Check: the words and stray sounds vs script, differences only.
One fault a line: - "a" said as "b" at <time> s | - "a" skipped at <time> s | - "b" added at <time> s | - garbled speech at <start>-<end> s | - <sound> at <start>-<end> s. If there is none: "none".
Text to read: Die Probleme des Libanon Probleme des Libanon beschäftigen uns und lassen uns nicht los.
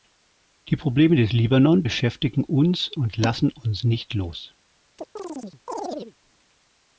- "Probleme des Libanon" skipped at 1.8 s
- chirp at 5.0-6.2 s